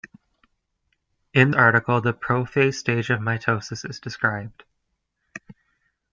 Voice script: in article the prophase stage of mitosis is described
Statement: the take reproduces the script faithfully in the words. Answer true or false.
true